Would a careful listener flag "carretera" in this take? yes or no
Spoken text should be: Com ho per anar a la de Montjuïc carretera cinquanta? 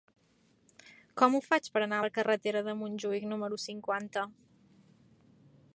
yes